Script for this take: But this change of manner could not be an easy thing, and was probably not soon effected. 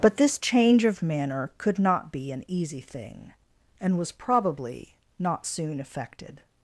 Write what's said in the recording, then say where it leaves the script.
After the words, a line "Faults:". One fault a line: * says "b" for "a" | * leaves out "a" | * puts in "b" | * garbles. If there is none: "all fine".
But this change of manner could not be an easy thing, and was probably not soon effected.
Faults:
all fine